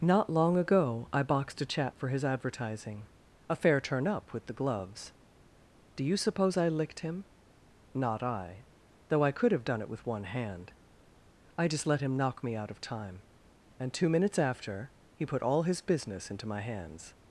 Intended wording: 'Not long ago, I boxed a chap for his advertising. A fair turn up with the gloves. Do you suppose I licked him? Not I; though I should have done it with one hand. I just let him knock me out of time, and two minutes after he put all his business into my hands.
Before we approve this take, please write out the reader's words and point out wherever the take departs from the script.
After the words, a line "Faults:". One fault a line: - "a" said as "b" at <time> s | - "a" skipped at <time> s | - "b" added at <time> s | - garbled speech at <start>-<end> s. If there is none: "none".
'Not long ago, I boxed a chap for his advertising. A fair turn up with the gloves. Do you suppose I licked him? Not I; though I could have done it with one hand. I just let him knock me out of time, and two minutes after he put all his business into my hands.
Faults:
- "should" said as "could" at 9.3 s